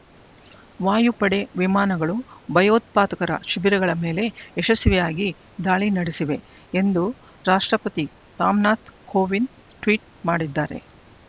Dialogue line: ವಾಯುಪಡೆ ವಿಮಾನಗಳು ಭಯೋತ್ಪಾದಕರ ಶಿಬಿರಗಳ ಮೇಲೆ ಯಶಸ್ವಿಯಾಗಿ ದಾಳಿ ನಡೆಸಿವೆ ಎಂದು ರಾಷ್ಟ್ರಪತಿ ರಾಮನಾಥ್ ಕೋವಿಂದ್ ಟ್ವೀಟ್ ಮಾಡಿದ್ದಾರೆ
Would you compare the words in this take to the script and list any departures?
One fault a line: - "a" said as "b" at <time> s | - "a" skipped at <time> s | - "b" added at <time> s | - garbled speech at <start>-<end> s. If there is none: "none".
none